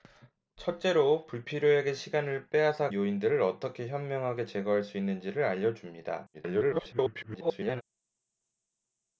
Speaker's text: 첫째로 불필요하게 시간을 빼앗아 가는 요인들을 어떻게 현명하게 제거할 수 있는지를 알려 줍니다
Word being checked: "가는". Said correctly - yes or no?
no